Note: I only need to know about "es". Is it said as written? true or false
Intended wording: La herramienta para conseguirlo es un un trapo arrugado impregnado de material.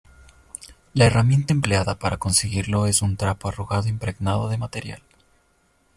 true